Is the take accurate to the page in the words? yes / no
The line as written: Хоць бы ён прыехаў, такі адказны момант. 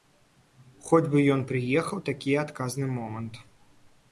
yes